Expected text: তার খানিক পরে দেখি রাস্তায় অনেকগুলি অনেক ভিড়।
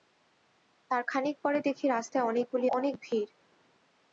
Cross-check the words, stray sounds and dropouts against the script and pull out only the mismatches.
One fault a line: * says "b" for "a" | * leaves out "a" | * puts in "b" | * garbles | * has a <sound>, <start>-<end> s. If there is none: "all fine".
all fine